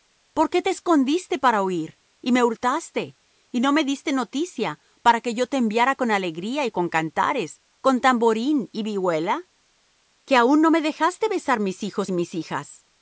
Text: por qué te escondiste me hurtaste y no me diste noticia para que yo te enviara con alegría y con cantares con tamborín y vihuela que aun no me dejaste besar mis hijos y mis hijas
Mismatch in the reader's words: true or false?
true